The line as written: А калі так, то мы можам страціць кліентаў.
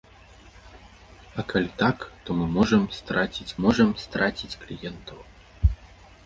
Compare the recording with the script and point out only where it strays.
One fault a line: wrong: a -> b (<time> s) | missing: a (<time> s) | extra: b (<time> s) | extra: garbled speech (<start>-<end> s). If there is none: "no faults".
extra: можам страціць (3.6 s)